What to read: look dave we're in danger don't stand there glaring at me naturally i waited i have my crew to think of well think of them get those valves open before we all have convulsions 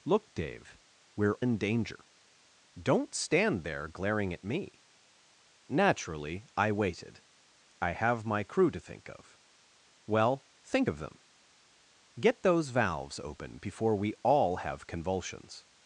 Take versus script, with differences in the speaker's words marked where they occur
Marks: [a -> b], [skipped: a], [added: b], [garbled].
look dave we're in danger don't stand there glaring at me naturally i waited i have my crew to think of well think of them get those valves open before we all have convulsions